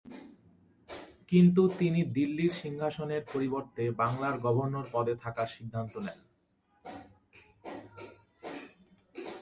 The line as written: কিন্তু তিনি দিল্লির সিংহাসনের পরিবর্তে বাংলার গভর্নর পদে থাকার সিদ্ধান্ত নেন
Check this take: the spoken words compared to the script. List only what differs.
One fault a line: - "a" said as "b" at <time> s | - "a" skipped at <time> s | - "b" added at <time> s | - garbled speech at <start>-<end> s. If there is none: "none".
none